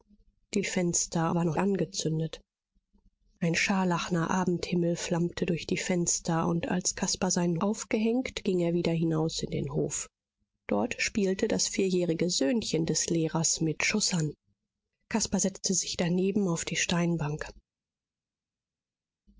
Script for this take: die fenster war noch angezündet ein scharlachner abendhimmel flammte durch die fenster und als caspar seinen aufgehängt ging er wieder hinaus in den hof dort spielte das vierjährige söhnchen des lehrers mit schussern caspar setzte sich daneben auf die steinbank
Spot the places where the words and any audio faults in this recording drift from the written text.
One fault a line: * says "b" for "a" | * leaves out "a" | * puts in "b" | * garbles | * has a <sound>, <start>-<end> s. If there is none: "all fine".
all fine